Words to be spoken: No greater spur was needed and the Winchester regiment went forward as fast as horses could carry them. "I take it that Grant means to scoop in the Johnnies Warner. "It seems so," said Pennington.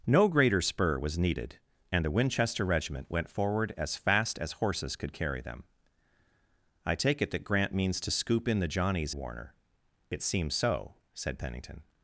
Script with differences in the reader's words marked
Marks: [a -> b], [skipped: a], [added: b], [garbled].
No greater spur was needed and the Winchester regiment went forward as fast as horses could carry them. "I take it that Grant means to scoop in the Johnnies Warner. "It seems so," said Pennington.